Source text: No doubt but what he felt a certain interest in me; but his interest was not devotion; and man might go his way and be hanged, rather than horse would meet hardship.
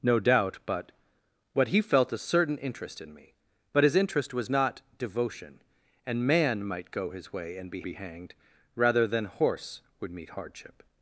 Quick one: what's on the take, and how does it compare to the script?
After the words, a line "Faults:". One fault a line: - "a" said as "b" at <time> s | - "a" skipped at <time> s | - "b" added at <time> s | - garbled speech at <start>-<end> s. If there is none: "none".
No doubt but what he felt a certain interest in me; but his interest was not devotion; and man might go his way and be be hanged, rather than horse would meet hardship.
Faults:
- "be" added at 7.8 s